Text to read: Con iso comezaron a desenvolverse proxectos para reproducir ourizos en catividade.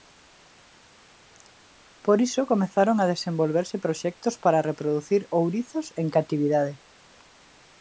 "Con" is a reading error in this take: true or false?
true